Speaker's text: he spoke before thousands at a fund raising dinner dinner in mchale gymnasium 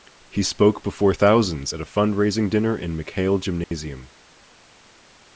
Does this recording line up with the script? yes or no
no